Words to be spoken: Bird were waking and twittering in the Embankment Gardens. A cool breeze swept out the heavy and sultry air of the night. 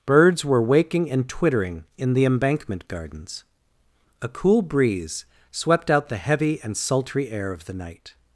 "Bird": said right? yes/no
no